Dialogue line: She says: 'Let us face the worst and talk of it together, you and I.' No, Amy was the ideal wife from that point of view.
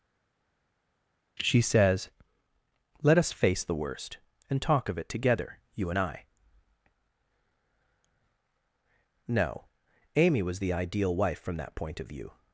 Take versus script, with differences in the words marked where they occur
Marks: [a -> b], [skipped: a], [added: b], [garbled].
She says: 'Let us face the worst and talk of it together, you and I.' No, Amy was the ideal wife from that point of view.